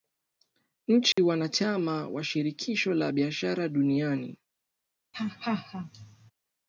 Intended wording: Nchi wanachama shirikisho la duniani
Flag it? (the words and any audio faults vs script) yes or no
yes